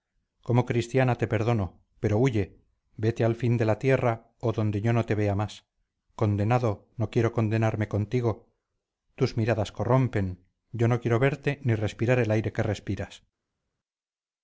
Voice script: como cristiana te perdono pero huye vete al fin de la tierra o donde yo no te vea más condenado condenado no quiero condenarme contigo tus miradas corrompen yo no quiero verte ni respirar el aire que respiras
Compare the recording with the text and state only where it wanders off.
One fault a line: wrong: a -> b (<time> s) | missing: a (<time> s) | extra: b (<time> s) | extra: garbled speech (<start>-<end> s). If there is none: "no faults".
missing: condenado (6.9 s)